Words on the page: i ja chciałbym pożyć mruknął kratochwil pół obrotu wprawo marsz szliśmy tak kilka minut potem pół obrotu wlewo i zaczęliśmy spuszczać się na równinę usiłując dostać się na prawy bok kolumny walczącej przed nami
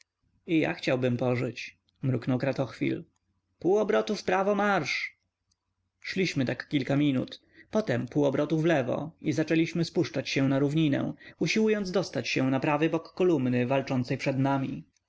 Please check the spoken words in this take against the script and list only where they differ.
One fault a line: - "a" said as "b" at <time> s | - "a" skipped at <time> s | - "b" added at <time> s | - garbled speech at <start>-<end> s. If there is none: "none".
none